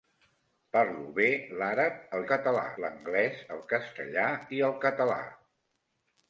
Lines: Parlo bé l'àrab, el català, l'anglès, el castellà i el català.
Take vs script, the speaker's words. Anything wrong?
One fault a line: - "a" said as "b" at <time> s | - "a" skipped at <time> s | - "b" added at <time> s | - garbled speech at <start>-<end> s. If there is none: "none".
none